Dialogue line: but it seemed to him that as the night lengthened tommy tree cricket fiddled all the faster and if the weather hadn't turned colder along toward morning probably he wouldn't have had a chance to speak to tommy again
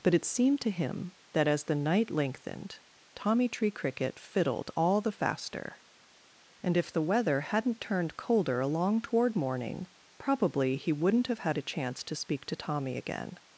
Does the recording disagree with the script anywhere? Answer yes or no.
no